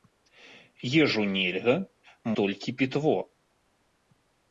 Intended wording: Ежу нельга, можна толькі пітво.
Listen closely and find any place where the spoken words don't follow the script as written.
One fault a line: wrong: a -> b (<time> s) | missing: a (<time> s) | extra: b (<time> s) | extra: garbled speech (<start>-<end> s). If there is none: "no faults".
missing: можна (1.8 s)